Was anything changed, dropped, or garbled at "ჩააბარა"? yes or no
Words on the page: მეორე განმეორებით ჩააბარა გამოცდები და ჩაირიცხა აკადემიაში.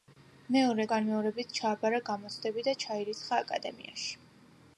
no